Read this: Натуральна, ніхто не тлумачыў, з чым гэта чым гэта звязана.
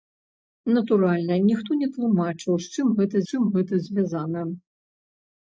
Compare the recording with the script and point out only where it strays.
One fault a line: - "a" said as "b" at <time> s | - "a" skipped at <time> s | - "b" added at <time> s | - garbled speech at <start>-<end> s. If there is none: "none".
none